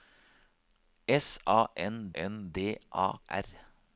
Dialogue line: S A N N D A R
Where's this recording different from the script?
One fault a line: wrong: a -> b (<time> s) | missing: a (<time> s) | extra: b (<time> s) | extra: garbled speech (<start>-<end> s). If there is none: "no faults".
no faults